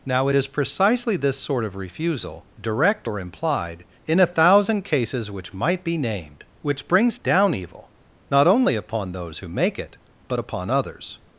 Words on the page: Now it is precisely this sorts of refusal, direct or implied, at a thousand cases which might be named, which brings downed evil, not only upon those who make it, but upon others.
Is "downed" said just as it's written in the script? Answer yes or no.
no